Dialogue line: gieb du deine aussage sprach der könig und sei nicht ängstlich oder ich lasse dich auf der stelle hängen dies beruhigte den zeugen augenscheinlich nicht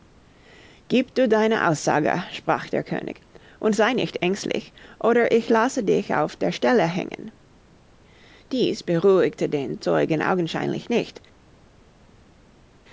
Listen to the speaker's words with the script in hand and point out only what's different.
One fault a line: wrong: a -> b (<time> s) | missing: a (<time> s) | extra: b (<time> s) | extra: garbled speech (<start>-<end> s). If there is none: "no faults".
no faults